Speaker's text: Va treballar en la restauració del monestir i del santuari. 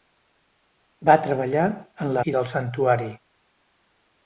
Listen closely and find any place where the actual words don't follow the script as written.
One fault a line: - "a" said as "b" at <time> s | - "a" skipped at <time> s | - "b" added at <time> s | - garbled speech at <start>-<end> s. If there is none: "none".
- "restauració del monestir" skipped at 2.2 s